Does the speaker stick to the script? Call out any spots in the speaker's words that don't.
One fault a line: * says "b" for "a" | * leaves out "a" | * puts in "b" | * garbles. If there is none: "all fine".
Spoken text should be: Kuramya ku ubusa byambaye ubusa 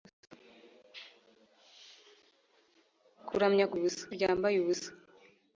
all fine